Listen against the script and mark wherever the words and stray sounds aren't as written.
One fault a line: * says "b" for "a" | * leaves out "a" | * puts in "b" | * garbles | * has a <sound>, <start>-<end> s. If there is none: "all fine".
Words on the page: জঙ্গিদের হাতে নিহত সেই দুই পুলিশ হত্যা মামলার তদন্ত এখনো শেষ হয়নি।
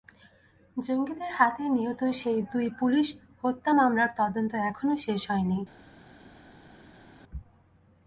all fine